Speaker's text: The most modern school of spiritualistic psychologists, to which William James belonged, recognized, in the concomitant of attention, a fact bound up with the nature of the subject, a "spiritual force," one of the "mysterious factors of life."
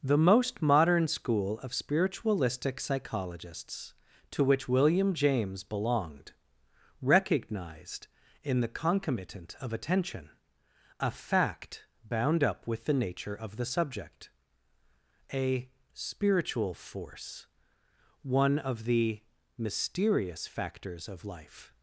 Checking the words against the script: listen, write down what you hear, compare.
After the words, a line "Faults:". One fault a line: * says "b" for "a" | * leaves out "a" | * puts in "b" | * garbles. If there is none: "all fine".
The most modern school of spiritualistic psychologists, to which William James belonged, recognized, in the concomitant of attention, a fact bound up with the nature of the subject, a "spiritual force," one of the "mysterious factors of life."
Faults:
all fine